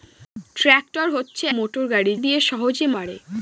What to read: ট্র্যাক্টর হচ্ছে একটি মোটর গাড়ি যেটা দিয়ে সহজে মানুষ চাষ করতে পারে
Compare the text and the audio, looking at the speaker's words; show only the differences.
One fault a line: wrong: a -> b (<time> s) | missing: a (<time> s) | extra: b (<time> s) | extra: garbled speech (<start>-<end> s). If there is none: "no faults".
missing: একটি (1.4 s)
missing: যেটা (2.1 s)
missing: মানুষ চাষ করতে (2.9 s)